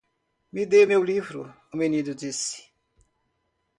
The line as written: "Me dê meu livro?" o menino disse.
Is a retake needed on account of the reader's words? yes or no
no